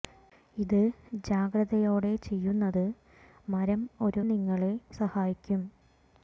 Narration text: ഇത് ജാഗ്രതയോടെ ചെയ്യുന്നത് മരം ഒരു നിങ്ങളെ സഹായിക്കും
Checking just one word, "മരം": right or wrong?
right